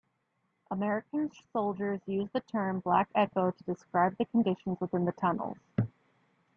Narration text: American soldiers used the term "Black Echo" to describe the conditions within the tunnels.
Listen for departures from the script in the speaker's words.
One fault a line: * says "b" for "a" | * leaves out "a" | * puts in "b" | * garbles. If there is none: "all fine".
all fine